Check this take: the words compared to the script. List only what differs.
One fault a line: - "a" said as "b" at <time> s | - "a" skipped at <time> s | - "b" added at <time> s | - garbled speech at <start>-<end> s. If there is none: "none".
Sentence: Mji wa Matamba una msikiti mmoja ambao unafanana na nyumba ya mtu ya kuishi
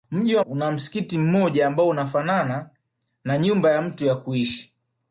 - "Matamba" skipped at 0.4 s